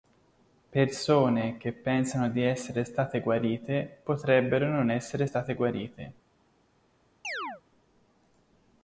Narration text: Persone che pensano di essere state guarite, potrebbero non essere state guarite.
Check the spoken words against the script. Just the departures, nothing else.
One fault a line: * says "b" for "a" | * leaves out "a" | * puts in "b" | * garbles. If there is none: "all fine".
all fine